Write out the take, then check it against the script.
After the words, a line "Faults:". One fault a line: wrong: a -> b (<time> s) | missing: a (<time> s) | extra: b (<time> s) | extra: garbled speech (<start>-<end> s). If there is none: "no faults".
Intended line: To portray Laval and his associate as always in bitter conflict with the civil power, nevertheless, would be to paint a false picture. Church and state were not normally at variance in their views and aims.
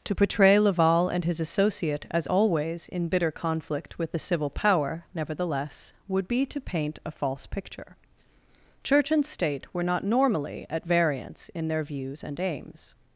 To portray Laval and his associate as always in bitter conflict with the civil power, nevertheless, would be to paint a false picture. Church and state were not normally at variance in their views and aims.
Faults:
no faults